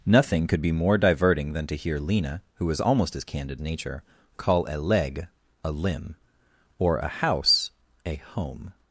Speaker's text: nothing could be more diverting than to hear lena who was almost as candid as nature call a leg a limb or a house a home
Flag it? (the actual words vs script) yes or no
yes